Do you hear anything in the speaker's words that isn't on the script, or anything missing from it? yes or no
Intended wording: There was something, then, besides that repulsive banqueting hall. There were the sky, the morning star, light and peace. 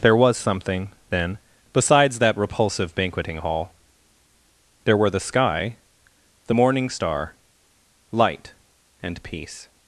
no